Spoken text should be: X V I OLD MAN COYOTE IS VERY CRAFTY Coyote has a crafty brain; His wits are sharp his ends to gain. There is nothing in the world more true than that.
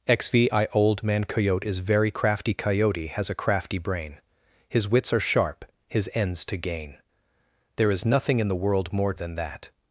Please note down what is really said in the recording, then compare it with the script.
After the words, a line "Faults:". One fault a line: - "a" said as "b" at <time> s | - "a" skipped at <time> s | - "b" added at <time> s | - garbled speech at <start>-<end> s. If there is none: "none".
X V I OLD MAN COYOTE IS VERY CRAFTY Coyote has a crafty brain; His wits are sharp his ends to gain. There is nothing in the world more than that.
Faults:
- "true" skipped at 9.1 s